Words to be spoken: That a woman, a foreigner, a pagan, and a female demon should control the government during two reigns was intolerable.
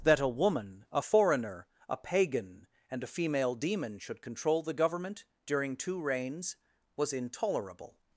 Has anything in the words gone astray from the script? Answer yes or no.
no